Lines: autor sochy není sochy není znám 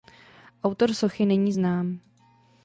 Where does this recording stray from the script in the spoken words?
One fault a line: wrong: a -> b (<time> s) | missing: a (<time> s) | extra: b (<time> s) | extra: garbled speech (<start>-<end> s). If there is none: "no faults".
missing: sochy není (1.5 s)